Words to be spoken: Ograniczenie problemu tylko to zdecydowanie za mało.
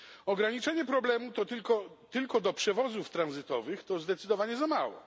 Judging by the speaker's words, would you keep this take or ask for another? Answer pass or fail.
fail